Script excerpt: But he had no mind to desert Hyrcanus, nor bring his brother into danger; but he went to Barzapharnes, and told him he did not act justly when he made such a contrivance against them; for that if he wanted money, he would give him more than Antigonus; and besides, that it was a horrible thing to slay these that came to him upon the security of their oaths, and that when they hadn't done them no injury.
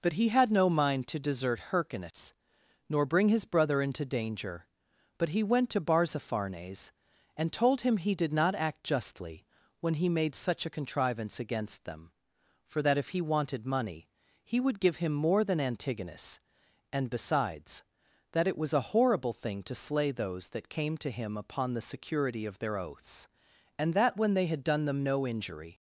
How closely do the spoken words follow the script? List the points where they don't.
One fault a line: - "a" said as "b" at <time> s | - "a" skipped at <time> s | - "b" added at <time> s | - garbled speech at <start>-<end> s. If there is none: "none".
- "these" said as "those" at 20.1 s
- "hadn't" said as "had" at 24.5 s